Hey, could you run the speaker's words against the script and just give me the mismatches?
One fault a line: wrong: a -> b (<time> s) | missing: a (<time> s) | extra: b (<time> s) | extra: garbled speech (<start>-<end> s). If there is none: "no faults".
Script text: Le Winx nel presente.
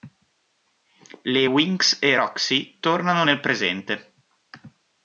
extra: e Roxy tornano (2.0 s)